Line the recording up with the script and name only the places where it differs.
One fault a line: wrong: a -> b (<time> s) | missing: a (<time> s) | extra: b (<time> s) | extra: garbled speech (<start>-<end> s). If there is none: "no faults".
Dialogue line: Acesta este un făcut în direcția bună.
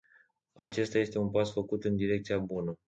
extra: pas (1.3 s)